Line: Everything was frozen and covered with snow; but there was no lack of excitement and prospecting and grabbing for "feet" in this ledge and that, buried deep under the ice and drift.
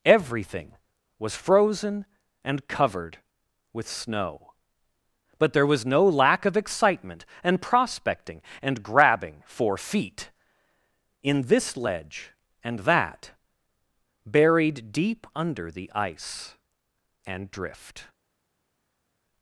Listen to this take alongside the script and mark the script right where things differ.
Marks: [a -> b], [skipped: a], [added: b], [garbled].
Everything was frozen and covered with snow; but there was no lack of excitement and prospecting and grabbing for "feet" in this ledge and that, buried deep under the ice and drift.